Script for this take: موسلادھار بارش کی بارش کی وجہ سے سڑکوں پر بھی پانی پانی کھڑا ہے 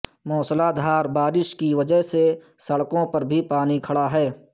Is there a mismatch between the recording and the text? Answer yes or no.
yes